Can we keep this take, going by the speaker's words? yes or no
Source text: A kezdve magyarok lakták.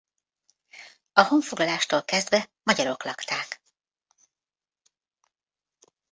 no